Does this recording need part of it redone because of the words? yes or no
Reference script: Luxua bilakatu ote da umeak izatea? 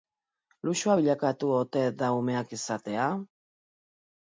no